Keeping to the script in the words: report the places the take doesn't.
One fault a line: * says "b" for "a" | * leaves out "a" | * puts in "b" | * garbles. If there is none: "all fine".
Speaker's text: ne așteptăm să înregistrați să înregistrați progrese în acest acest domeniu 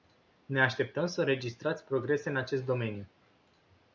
* leaves out "să înregistrați"
* leaves out "acest"